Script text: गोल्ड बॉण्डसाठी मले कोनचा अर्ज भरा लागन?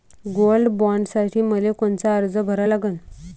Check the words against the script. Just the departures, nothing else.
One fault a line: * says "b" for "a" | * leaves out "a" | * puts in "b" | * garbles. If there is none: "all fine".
all fine